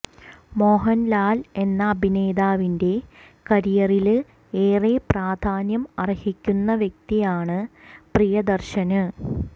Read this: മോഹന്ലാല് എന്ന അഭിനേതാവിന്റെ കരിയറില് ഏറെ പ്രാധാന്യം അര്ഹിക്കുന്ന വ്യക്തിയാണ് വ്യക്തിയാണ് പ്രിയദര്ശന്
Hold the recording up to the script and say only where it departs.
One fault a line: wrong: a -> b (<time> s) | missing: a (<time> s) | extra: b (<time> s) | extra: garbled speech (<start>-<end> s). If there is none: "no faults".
missing: വ്യക്തിയാണ് (7.6 s)